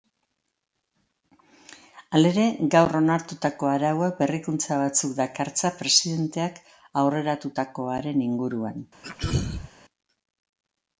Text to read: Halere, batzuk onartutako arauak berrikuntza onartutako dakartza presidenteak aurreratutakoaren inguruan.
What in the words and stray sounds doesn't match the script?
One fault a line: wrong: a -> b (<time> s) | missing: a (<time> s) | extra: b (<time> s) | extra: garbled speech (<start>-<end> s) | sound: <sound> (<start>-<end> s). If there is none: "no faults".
wrong: batzuk -> gaur (2.8 s)
wrong: onartutako -> batzuk (4.8 s)
sound: throat clearing (9.0-9.7 s)